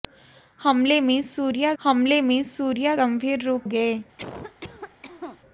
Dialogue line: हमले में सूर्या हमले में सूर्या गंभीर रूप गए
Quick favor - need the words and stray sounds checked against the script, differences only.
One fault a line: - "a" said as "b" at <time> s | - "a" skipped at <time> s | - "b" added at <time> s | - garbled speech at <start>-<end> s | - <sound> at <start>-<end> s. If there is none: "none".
- cough at 4.2-5.4 s